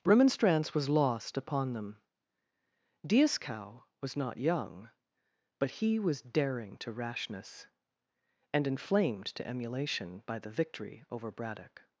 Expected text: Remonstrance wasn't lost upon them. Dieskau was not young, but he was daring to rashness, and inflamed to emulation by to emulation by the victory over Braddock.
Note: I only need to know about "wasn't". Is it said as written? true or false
false